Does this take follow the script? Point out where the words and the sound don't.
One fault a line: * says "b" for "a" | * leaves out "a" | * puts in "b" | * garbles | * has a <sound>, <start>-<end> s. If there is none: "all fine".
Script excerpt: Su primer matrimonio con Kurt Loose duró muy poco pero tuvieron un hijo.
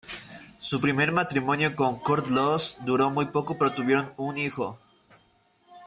all fine